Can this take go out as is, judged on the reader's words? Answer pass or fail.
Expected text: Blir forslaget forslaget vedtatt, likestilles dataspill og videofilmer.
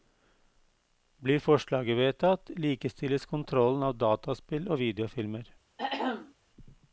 fail